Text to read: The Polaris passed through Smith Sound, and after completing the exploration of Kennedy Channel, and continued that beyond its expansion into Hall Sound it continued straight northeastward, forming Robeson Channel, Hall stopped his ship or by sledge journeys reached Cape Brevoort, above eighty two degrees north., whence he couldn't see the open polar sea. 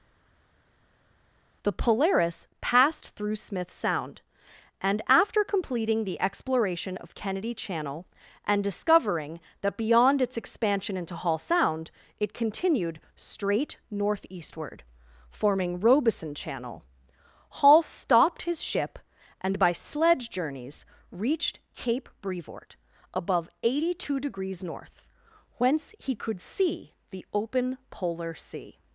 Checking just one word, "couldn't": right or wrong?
wrong